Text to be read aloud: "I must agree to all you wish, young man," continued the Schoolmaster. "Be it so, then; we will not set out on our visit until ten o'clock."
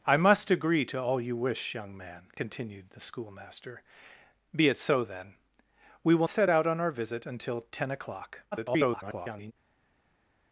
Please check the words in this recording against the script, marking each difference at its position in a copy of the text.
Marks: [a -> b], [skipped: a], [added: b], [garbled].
"I must agree to all you wish, young man," continued the Schoolmaster. "Be it so, then; we will [skipped: not] set out on our visit until ten o'clock." [garbled]